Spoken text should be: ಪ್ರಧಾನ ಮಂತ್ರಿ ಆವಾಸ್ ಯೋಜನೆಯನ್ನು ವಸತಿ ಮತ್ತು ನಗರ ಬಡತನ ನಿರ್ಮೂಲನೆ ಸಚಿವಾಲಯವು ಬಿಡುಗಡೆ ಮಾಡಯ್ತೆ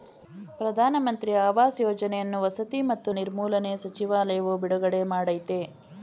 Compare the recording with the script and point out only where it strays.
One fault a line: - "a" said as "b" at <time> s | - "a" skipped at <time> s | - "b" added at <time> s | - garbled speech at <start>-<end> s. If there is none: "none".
- "ನಗರ ಬಡತನ" skipped at 3.1 s